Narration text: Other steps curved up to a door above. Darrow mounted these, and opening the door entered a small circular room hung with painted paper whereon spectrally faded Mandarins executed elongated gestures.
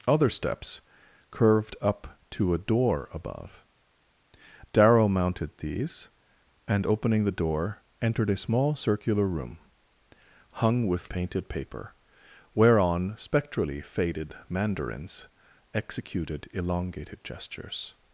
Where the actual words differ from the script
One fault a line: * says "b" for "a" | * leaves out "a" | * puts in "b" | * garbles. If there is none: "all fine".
all fine